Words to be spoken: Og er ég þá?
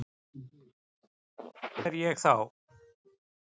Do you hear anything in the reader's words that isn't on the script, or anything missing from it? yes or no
no